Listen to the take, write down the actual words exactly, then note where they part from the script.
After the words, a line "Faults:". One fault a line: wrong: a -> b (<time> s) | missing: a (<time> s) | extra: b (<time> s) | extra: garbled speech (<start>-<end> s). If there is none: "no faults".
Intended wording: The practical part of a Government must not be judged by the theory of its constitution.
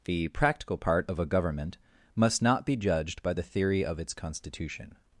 The practical part of a Government must not be judged by the theory of its constitution.
Faults:
no faults